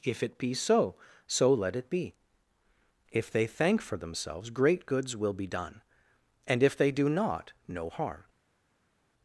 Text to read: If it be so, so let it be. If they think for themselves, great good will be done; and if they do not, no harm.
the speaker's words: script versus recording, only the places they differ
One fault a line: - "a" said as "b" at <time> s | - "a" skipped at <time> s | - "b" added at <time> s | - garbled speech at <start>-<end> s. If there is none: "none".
- "think" said as "thank" at 3.5 s
- "good" said as "goods" at 4.8 s